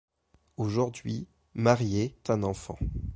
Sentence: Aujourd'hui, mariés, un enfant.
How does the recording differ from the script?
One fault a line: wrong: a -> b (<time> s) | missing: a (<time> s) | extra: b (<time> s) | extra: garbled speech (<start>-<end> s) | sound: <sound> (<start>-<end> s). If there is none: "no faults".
no faults